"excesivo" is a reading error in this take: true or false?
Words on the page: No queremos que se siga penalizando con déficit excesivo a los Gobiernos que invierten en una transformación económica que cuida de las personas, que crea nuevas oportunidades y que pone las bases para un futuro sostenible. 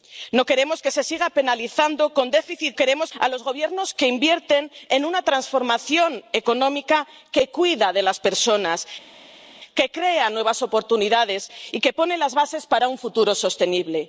true